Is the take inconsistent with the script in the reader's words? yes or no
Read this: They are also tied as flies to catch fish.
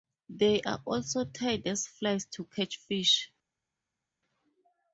no